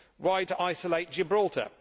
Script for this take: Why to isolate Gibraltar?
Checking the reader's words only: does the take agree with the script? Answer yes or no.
yes